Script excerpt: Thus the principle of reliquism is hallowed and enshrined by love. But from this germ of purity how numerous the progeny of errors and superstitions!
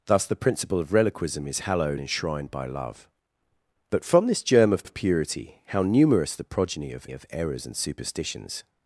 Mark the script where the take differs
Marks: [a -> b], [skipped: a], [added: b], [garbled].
Thus the principle of reliquism is hallowed [skipped: and] enshrined by love. But from this germ of [added: of] purity how numerous the progeny of [added: of] errors and superstitions!